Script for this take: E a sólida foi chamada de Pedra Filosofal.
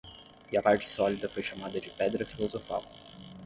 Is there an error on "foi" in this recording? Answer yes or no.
no